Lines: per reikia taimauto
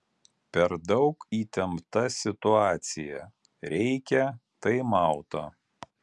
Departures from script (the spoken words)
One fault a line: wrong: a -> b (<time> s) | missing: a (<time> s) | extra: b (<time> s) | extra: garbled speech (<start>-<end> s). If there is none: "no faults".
extra: daug įtempta situacija (0.9 s)